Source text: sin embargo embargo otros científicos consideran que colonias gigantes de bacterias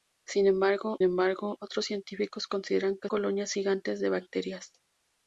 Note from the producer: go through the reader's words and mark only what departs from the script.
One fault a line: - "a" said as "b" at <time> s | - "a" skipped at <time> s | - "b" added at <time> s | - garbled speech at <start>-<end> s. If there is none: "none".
none